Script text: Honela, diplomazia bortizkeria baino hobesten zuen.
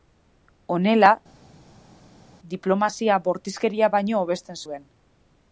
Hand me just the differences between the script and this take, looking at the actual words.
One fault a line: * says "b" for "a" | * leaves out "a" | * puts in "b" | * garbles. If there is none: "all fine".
all fine